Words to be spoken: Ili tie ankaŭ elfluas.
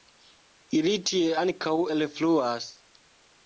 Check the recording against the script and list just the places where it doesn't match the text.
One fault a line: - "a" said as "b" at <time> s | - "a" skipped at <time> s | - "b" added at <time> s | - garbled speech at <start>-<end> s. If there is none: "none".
none